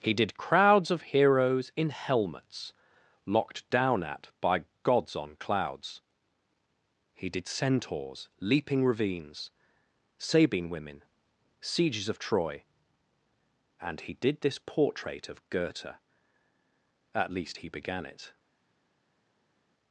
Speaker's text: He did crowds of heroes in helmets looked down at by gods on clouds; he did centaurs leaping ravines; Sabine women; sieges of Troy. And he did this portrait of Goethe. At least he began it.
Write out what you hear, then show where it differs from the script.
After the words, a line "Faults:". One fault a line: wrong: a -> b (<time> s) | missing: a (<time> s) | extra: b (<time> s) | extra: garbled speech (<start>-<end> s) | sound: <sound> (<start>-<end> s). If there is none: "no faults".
He did crowds of heroes in helmets locked down at by gods on clouds; he did centaurs leaping ravines; Sabine women; sieges of Troy. And he did this portrait of Goethe. At least he began it.
Faults:
wrong: looked -> locked (3.3 s)